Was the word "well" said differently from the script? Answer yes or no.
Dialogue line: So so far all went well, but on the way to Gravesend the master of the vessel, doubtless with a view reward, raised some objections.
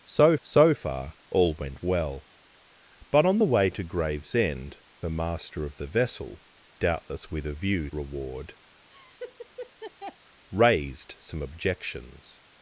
no